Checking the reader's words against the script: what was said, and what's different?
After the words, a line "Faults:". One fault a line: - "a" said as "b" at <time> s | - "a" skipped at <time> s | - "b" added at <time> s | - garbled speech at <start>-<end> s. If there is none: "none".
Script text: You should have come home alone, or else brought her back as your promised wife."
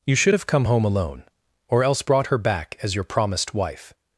You should have come home alone, or else brought her back as your promised wife."
Faults:
none